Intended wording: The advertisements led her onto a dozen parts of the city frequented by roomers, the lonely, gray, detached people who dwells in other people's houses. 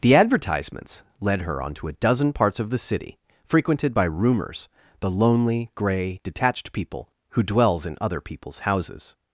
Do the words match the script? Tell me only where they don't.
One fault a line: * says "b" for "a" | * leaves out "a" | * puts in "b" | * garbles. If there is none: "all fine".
all fine